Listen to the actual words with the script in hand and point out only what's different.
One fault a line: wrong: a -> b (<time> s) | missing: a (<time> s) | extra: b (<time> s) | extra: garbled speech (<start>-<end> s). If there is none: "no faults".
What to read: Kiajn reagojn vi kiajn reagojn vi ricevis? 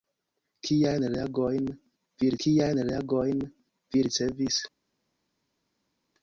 no faults